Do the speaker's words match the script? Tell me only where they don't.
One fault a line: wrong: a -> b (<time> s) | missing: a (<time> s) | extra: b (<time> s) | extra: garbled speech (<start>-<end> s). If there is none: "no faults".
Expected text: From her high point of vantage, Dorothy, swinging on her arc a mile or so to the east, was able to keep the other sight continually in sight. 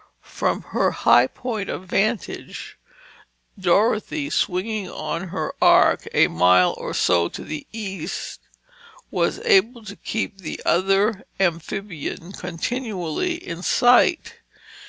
wrong: sight -> amphibian (11.4 s)